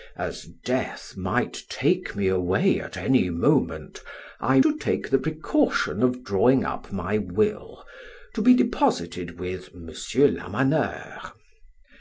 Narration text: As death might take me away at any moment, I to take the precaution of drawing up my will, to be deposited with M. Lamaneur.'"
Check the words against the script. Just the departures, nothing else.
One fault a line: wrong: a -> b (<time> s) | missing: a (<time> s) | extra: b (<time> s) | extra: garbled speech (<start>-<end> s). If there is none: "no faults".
no faults